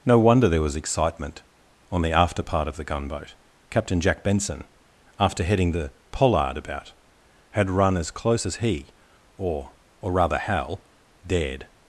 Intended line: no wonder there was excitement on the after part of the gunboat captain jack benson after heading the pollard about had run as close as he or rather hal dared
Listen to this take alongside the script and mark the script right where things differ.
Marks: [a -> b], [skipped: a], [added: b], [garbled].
no wonder there was excitement on the after part of the gunboat captain jack benson after heading the pollard about had run as close as he or [added: or] rather hal dared